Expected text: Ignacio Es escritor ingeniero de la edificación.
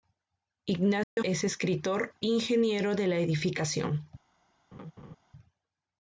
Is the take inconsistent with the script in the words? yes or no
no